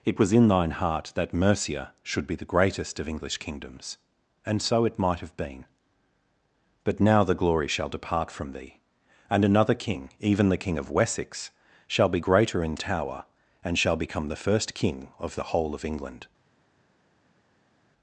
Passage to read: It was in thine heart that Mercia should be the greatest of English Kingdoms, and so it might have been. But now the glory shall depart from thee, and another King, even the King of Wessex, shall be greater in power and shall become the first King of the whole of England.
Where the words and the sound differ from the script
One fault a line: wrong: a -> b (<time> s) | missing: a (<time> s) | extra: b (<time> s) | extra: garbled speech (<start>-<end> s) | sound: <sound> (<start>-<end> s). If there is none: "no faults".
wrong: power -> tower (12.8 s)